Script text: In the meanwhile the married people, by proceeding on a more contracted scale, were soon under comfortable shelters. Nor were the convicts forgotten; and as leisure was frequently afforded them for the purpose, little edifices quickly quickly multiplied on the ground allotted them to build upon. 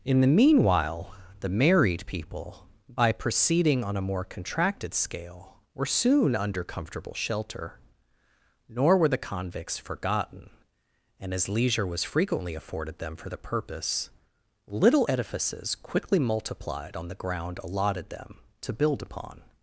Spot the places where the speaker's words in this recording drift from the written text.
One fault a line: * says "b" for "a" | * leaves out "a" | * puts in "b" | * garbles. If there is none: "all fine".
* says "shelter" for "shelters"
* leaves out "quickly"